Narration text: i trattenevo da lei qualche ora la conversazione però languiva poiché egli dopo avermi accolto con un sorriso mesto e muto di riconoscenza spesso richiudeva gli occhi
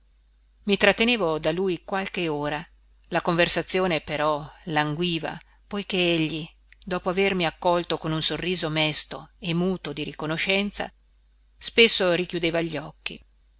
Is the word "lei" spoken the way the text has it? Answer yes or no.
no